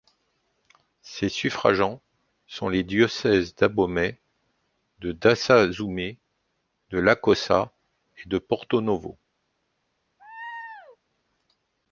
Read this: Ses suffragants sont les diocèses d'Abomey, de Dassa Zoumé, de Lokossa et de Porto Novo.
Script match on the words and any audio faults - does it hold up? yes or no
no